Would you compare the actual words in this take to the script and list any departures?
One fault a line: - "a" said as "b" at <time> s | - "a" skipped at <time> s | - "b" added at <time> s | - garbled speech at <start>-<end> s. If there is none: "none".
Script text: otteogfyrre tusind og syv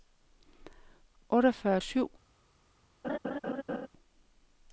- "tusind og" skipped at 1.8 s